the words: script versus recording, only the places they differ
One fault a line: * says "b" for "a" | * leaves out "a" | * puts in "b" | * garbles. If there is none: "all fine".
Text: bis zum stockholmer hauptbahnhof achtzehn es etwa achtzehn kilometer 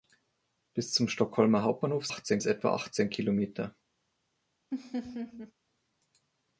all fine